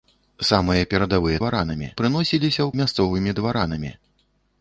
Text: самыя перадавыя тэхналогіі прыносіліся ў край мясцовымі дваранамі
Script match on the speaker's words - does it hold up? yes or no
no